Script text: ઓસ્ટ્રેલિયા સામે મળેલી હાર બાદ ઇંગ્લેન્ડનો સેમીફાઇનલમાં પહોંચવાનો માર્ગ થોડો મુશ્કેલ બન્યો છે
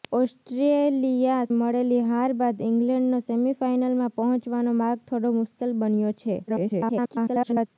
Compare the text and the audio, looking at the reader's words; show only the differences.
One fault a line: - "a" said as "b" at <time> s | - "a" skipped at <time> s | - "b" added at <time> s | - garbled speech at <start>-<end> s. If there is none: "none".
- "સામે" skipped at 1.5 s
- garbled speech at 6.5-7.7 s